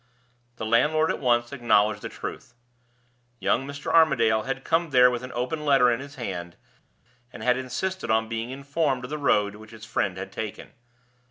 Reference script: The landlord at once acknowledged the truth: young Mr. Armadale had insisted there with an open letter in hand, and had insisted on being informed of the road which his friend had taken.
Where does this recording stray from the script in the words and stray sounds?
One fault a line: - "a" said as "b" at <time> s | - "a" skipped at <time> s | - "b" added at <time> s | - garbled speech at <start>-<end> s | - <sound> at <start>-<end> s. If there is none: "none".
- "insisted" said as "come" at 4.6 s
- "his" added at 6.0 s